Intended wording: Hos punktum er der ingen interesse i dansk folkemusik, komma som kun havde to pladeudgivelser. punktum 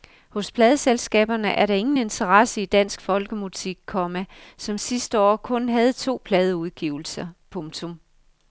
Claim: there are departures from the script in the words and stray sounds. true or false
true